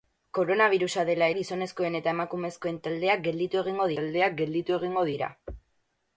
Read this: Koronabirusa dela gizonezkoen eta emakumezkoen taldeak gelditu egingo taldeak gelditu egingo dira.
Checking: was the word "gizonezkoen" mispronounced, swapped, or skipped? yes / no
no